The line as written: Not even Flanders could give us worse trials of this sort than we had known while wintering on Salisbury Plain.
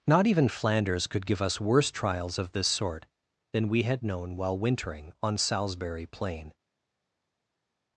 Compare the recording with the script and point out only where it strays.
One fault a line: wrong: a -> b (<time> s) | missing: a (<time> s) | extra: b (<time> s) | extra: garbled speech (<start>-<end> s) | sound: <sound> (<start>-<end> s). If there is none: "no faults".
no faults